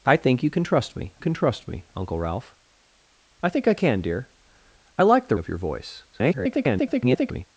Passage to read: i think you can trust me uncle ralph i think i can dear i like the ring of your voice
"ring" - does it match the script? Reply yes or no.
no